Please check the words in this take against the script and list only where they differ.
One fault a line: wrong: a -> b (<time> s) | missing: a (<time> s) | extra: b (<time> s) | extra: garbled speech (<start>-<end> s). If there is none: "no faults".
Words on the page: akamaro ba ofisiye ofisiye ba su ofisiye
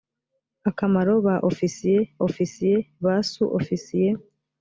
no faults